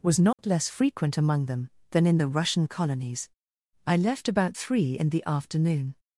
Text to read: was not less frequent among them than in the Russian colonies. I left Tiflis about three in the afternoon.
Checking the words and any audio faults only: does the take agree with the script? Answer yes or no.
no